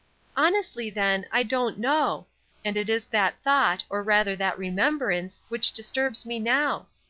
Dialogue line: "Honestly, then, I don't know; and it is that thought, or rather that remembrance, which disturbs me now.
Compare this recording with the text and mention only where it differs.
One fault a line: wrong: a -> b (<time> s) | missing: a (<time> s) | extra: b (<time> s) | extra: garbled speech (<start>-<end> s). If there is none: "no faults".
no faults